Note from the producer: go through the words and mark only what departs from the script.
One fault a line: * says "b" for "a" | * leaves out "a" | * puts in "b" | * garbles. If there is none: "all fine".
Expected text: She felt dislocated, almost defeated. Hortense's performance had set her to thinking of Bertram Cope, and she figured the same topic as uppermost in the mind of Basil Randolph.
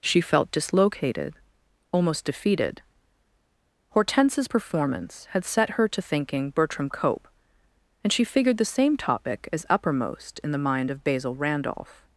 * leaves out "of"